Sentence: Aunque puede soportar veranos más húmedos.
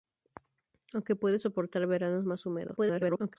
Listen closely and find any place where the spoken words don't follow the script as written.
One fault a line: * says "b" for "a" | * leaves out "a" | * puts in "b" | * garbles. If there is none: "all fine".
* garbles